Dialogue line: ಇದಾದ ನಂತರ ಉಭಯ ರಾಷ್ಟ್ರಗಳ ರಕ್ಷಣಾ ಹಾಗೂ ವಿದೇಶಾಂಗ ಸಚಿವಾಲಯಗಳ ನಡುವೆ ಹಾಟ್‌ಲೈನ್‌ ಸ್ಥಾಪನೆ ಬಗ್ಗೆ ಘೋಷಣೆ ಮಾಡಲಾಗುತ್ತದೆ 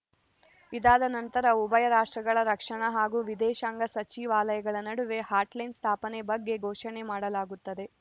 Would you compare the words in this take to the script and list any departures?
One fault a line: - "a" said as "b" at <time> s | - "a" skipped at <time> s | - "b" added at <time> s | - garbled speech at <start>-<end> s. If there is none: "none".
none